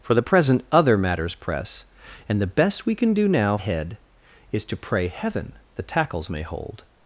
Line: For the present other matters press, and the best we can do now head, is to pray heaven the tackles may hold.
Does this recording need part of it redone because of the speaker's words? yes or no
no